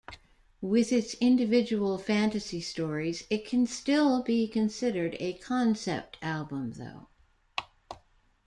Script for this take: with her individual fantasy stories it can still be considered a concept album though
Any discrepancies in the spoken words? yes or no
yes